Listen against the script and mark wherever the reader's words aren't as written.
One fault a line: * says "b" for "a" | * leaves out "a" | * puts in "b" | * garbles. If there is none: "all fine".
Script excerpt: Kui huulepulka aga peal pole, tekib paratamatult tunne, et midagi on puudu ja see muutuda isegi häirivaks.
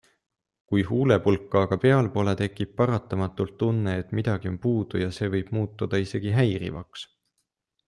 * puts in "võib"